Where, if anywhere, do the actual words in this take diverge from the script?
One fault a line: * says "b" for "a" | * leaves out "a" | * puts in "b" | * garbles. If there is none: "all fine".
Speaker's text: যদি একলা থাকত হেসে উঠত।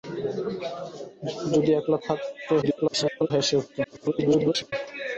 * garbles
* garbles